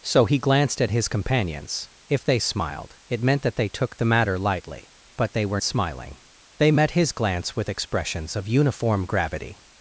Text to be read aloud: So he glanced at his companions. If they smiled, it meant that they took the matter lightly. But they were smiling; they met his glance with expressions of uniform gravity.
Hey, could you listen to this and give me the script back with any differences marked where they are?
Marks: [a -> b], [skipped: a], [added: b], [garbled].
So he glanced at his companions. If they smiled, it meant that they took the matter lightly. But they were smiling; they met his glance with expressions of uniform gravity.